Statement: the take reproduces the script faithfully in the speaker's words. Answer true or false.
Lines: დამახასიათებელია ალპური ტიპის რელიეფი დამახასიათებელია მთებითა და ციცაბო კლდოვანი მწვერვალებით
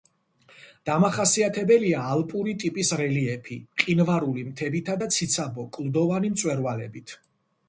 false